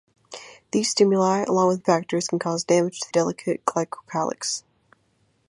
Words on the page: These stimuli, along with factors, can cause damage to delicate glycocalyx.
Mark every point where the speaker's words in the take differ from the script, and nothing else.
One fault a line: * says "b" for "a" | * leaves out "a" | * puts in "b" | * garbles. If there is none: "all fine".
all fine